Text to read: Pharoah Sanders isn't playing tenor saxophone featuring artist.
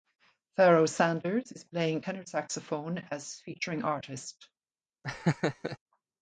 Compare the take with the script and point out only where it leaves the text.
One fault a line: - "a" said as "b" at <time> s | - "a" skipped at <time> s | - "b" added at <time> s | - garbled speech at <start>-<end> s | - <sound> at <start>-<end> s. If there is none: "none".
- "isn't" said as "is" at 1.5 s
- "as" added at 3.0 s
- laugh at 5.0-5.8 s